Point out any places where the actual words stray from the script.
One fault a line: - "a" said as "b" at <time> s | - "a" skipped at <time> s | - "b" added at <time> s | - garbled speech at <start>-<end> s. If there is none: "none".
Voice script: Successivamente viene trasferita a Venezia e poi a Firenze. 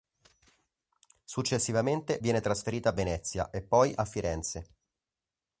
none